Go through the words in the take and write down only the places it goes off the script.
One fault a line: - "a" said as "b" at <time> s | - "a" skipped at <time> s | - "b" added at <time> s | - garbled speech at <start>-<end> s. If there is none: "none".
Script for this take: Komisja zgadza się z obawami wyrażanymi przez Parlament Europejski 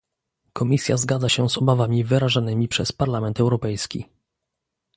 none